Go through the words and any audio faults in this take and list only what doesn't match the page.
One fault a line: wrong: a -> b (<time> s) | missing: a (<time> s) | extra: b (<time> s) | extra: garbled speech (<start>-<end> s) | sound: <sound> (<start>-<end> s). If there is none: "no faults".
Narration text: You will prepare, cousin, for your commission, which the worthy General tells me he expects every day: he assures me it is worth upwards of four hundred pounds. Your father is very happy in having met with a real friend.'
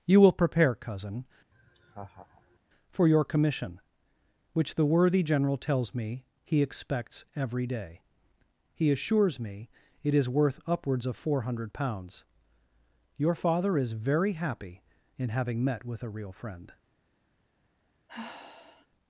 sound: laugh (1.5-2.6 s)
sound: sigh (18.1-18.9 s)